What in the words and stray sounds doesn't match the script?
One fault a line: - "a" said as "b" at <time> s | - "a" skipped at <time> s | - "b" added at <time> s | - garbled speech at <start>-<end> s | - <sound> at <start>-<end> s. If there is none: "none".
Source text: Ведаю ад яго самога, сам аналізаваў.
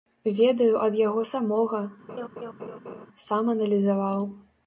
- laugh at 2.1-3.1 s